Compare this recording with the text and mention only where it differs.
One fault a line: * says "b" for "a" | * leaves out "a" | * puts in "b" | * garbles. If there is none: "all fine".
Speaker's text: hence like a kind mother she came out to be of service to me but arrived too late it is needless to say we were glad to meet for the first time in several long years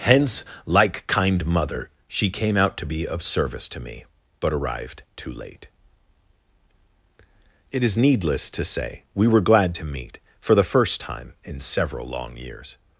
* leaves out "a"